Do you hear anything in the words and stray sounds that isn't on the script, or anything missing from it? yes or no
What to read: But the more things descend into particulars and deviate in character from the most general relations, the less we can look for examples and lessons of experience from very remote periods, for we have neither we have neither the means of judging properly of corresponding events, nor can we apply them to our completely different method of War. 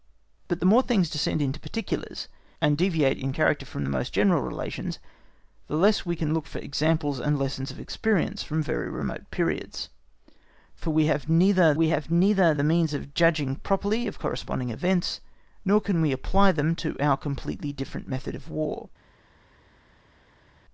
no